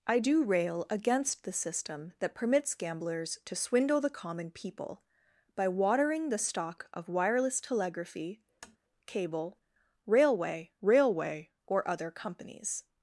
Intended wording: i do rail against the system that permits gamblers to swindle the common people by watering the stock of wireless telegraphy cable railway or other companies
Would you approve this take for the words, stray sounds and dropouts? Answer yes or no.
no